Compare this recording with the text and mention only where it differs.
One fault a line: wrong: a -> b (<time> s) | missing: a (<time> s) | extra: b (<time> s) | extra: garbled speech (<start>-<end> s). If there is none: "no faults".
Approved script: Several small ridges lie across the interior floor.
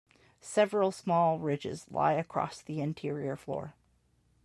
no faults